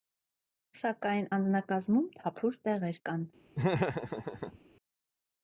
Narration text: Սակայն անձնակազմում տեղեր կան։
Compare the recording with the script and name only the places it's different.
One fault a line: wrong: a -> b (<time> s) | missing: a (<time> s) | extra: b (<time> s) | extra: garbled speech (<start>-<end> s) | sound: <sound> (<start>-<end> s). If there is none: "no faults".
extra: թափուր (2.2 s)
sound: laugh (3.5-4.6 s)